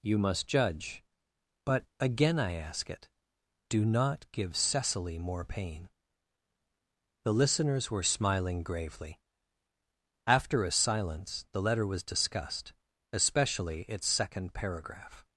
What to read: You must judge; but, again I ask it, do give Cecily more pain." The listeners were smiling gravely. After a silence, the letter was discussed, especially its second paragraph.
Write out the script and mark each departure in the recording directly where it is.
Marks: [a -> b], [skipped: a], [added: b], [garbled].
You must judge; but, again I ask it, do [added: not] give Cecily more pain." The listeners were smiling gravely. After a silence, the letter was discussed, especially its second paragraph.